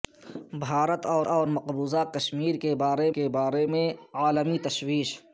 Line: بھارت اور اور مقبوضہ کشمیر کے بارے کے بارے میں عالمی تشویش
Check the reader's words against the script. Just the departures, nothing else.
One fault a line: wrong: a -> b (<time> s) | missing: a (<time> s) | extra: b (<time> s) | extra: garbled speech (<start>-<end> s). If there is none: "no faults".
no faults